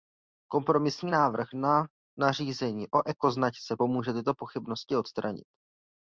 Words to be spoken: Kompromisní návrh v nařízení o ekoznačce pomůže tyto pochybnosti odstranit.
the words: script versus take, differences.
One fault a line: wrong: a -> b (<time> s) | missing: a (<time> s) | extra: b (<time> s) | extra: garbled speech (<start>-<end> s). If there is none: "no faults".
wrong: v -> na (1.5 s)